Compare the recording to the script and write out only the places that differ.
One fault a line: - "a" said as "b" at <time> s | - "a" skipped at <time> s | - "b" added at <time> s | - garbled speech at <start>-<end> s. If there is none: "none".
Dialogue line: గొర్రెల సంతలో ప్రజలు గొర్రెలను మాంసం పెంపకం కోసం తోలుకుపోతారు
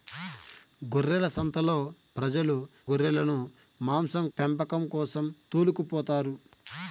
none